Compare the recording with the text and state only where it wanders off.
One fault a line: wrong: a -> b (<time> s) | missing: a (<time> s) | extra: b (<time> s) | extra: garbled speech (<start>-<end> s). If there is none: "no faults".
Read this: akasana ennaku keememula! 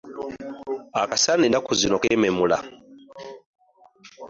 extra: zino (1.8 s)